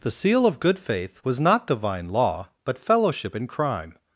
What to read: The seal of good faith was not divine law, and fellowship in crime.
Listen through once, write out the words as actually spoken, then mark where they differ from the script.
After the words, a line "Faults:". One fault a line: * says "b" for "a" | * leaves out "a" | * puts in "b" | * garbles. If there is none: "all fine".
The seal of good faith was not divine law, but fellowship in crime.
Faults:
* says "but" for "and"